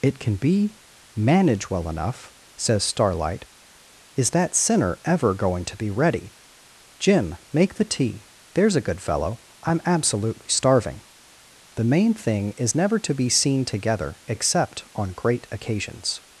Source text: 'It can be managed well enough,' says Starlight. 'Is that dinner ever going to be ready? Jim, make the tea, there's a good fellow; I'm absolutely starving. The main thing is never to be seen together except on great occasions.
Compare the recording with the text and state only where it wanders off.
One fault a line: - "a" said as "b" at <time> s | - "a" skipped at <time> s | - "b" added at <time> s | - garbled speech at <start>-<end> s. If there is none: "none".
- "managed" said as "manage" at 1.1 s
- "dinner" said as "sinner" at 4.5 s